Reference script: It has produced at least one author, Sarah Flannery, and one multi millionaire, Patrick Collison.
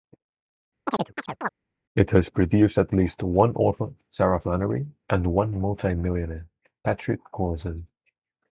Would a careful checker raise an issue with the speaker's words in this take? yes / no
no